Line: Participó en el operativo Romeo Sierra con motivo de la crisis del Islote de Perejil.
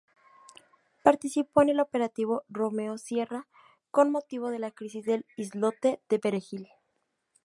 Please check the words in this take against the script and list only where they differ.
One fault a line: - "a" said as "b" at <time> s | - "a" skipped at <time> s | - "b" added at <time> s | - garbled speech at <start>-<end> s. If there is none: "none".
none